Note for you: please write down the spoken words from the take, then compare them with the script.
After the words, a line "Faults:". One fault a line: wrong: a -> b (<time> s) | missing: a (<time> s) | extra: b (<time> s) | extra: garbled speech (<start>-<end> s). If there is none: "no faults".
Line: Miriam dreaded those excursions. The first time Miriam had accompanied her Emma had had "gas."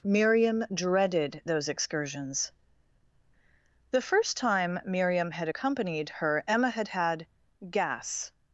Miriam dreaded those excursions. The first time Miriam had accompanied her Emma had had "gas."
Faults:
no faults